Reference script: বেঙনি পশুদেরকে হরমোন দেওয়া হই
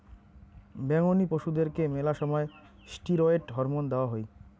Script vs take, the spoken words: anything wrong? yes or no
yes